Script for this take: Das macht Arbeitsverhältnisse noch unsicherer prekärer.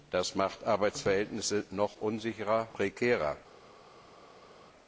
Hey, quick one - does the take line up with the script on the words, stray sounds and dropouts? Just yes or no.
yes